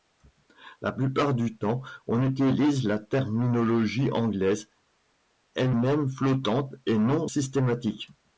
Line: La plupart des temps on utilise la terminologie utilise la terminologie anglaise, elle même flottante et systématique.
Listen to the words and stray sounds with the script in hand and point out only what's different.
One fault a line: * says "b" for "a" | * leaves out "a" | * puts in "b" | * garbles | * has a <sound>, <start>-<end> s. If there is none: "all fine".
* says "du" for "des"
* leaves out "utilise la terminologie"
* puts in "non"